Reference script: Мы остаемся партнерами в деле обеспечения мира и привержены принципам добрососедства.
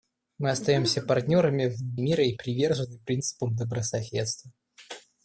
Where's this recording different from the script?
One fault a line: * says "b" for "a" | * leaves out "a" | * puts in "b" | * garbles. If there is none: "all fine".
* leaves out "деле обеспечения"